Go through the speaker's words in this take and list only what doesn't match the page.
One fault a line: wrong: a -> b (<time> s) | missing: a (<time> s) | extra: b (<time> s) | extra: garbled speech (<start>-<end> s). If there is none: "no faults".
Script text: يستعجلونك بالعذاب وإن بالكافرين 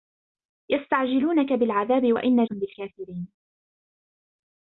no faults